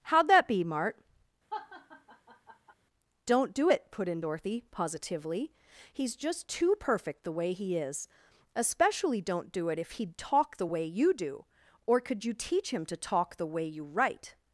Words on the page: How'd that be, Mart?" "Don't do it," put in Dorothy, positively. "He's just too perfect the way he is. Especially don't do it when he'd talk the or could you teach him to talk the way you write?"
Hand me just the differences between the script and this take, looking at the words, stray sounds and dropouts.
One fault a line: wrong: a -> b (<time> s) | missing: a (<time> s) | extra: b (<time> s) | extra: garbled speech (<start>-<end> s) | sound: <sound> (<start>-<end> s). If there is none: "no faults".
sound: laugh (1.5-2.7 s)
wrong: when -> if (9.8 s)
extra: way you do (10.6 s)